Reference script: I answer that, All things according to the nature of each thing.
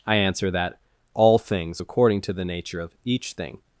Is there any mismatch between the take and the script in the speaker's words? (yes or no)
no